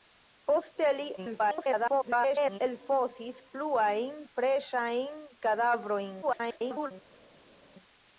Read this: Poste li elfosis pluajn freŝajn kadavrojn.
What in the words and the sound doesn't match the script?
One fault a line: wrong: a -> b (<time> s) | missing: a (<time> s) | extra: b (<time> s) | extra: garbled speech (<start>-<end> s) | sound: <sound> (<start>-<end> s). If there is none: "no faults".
extra: garbled speech (1.2-2.6 s)
extra: garbled speech (6.2-6.9 s)